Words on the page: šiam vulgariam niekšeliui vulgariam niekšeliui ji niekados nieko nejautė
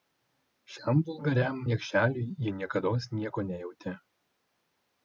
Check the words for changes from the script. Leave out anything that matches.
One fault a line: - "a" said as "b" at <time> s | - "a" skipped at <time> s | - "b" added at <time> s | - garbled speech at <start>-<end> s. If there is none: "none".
- "vulgariam niekšeliui" skipped at 2.3 s